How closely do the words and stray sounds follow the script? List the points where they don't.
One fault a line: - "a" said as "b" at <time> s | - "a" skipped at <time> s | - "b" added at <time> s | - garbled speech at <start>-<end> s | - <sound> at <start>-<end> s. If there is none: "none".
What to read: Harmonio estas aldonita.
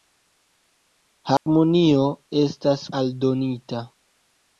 - dropout at 1.4-1.5 s